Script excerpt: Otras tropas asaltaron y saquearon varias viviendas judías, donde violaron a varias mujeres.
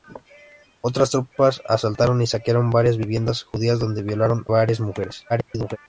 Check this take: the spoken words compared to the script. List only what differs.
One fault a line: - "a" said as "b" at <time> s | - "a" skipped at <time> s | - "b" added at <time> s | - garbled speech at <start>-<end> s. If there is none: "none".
- "a" skipped at 4.5 s
- garbled speech at 5.3-5.8 s